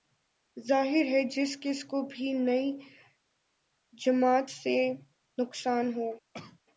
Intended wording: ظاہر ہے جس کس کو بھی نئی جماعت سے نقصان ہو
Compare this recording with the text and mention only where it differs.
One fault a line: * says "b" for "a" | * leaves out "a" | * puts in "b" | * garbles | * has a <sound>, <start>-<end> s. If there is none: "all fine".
* has a cough, 6.3-6.6 s